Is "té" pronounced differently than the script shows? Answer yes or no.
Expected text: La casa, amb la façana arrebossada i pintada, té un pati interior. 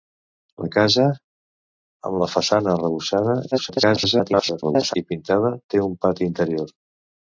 no